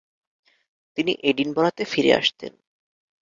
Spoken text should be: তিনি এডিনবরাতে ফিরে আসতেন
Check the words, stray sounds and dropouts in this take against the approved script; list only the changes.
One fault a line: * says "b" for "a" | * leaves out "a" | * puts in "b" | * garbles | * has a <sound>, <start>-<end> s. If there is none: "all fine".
all fine